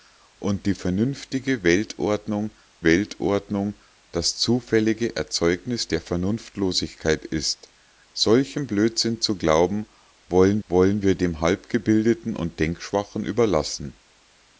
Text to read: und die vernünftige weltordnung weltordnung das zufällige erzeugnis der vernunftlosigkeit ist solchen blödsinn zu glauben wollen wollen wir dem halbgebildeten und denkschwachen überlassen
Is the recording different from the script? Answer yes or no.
no